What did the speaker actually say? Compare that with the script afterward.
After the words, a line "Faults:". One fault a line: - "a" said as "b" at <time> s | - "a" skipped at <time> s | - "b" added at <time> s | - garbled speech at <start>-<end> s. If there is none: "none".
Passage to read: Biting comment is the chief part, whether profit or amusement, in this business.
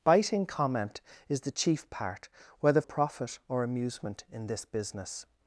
Biting comment is the chief part, whether profit or amusement, in this business.
Faults:
none